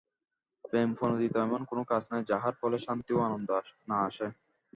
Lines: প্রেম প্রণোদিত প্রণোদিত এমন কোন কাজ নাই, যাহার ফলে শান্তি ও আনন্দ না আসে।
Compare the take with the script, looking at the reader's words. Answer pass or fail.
fail